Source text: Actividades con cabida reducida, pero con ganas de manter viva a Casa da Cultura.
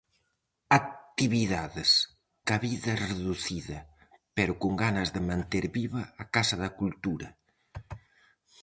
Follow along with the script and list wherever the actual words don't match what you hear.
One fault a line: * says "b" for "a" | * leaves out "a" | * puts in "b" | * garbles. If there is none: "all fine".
* leaves out "con"